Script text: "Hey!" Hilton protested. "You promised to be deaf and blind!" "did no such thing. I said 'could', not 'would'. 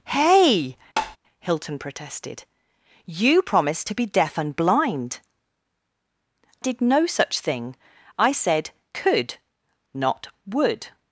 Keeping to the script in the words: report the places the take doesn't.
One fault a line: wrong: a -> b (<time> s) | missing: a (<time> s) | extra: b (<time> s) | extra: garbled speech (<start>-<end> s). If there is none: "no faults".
no faults